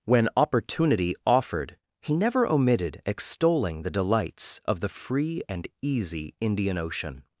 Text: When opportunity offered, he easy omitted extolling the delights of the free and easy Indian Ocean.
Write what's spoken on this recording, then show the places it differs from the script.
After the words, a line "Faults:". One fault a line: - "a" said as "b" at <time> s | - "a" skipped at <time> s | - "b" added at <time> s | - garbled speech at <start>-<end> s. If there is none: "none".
When opportunity offered, he never omitted extolling the delights of the free and easy Indian Ocean.
Faults:
- "easy" said as "never" at 2.1 s